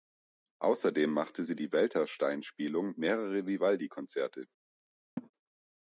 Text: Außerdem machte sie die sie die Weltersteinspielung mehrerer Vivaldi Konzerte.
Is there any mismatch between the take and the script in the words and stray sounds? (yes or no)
yes